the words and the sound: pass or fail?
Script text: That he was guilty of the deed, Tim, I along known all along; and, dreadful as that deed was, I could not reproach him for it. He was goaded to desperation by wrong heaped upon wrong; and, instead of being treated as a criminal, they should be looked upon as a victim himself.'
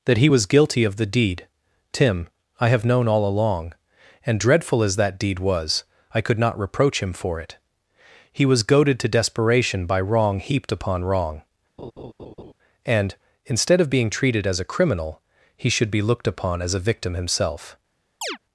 fail